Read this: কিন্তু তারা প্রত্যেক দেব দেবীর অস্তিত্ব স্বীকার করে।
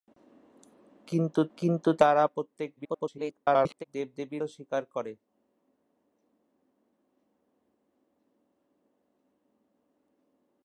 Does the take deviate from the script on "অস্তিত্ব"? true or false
true